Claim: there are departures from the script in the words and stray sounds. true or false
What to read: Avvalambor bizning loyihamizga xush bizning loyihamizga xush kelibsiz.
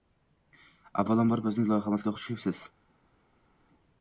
true